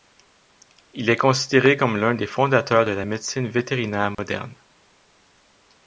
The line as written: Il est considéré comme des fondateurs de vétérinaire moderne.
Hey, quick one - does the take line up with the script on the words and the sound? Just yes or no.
no